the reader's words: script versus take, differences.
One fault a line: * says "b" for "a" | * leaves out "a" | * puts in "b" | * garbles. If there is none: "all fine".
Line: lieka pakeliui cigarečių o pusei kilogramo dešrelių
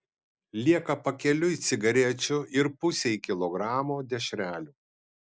* says "ir" for "o"